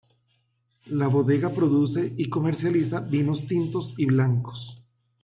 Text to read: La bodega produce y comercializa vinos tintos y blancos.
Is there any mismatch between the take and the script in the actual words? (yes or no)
no